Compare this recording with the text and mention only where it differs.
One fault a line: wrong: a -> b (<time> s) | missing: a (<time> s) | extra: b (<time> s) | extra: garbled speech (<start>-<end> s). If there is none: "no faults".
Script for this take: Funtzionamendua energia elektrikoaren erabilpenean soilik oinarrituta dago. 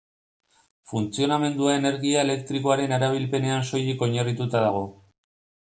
no faults